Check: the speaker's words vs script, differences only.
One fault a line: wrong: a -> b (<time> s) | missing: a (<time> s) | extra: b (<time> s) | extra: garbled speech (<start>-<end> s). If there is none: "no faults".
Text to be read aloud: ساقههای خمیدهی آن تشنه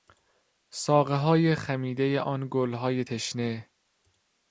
extra: گلهای (2.5 s)